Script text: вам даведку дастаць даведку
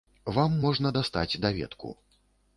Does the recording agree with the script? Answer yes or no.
no